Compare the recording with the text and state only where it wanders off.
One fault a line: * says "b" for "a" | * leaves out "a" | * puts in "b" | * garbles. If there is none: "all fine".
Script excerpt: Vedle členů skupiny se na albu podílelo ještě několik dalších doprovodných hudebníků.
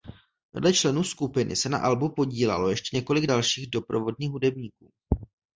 all fine